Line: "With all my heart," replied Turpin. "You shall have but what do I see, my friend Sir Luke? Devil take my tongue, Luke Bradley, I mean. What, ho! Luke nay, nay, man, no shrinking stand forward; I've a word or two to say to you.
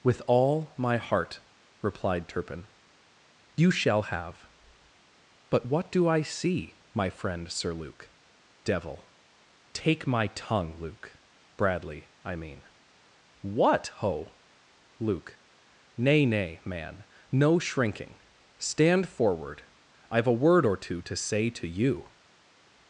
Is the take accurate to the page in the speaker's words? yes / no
yes